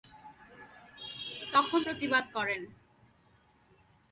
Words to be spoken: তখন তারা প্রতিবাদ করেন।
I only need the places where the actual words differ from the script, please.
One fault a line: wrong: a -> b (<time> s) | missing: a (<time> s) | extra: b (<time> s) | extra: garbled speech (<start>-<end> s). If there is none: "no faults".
missing: তারা (1.8 s)